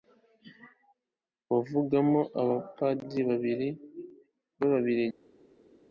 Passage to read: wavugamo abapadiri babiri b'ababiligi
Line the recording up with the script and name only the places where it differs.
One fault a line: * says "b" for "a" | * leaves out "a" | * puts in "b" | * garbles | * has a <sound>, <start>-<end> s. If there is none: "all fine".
all fine